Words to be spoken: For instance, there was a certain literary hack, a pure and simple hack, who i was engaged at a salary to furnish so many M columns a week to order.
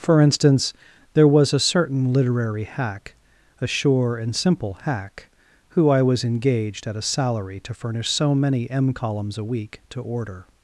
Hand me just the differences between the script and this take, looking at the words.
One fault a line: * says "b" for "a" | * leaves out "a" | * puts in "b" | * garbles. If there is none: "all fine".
* says "sure" for "pure"